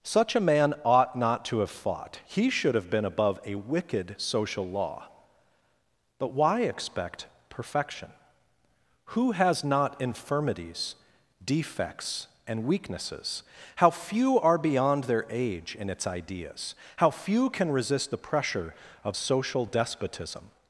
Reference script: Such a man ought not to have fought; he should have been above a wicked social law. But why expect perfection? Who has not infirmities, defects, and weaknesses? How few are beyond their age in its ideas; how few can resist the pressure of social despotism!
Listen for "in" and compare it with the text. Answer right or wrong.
right